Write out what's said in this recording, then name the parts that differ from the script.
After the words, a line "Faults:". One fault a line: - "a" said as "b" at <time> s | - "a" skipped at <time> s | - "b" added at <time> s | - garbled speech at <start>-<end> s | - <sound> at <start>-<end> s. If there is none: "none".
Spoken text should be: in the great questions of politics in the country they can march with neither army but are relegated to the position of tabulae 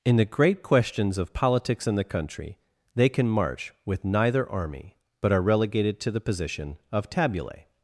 in the great questions of politics in the country they can march with neither army but are relegated to the position of tabulae
Faults:
none